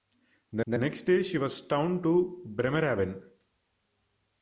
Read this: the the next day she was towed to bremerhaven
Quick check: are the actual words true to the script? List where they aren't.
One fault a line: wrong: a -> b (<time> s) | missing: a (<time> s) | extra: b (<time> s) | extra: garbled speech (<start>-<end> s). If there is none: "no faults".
no faults